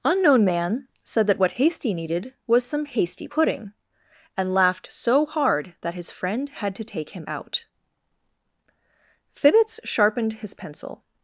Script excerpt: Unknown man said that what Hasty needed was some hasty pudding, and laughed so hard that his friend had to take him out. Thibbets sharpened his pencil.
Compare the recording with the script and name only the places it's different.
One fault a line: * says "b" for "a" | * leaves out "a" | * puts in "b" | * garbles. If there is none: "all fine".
all fine